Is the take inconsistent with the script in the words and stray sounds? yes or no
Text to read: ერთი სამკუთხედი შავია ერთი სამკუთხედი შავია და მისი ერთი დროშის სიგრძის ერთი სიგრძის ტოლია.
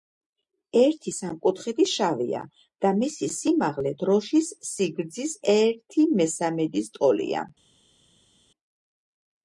yes